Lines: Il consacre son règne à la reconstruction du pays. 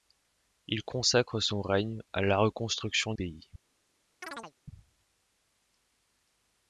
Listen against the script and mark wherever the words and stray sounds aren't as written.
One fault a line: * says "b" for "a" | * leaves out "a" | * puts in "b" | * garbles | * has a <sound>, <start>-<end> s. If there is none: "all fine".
* leaves out "du"
* has a chirp, 4.2-4.5 s